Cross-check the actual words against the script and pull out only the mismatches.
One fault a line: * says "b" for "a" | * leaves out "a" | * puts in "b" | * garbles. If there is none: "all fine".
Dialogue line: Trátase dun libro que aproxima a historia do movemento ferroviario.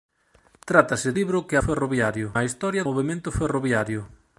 * leaves out "dun"
* says "ferroviario" for "aproxima"
* leaves out "do"